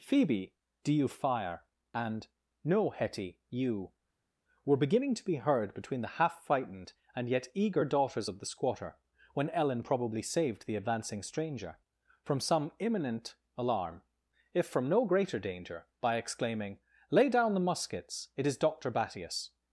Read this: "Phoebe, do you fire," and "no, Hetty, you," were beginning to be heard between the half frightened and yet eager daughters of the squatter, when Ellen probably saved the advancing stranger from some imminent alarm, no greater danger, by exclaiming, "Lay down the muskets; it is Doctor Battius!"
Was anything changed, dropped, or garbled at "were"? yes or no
no